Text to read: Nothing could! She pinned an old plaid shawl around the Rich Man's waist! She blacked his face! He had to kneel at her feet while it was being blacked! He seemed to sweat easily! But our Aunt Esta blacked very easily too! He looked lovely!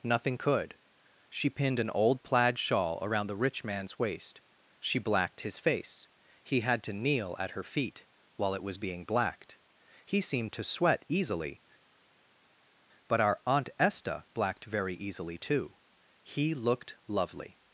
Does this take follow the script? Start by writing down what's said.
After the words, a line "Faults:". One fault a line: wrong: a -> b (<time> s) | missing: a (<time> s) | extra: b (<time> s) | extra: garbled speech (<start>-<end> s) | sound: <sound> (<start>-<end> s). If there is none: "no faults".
Nothing could! She pinned an old plaid shawl around the Rich Man's waist! She blacked his face! He had to kneel at her feet while it was being blacked! He seemed to sweat easily! But our Aunt Esta blacked very easily too! He looked lovely!
Faults:
no faults